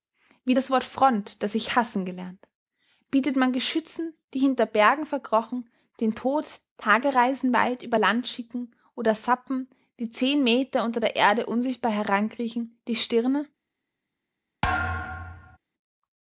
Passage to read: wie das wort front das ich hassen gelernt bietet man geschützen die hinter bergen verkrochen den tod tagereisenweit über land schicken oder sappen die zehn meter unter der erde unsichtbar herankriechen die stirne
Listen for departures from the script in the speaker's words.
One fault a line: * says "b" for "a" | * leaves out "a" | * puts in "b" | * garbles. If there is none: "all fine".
all fine